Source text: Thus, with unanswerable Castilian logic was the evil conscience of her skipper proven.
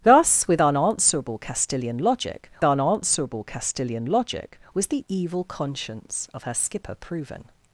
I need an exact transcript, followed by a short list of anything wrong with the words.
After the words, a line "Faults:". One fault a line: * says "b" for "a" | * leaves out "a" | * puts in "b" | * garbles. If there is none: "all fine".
Thus, with unanswerable Castilian logic unanswerable Castilian logic was the evil conscience of her skipper proven.
Faults:
* puts in "unanswerable Castilian logic"